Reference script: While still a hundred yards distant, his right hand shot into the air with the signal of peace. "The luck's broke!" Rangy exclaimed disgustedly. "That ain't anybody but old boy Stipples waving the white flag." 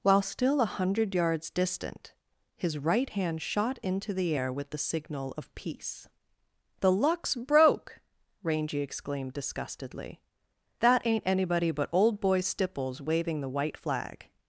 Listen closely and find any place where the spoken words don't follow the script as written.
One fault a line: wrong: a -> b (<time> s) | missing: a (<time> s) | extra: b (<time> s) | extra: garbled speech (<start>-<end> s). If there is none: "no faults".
no faults